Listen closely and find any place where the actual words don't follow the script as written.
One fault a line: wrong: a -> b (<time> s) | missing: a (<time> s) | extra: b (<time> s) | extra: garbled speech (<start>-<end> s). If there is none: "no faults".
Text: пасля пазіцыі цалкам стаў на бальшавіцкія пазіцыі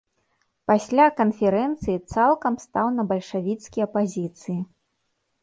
wrong: пазіцыі -> канферэнцыі (1.2 s)